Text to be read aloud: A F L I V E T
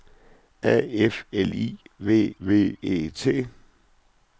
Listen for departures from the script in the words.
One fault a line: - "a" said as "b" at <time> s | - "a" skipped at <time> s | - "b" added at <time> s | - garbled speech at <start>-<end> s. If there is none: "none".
- "V" added at 2.4 s